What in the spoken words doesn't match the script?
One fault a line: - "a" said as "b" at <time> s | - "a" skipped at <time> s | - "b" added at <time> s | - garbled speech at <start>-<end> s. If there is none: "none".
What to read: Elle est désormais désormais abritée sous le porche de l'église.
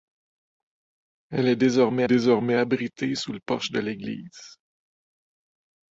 none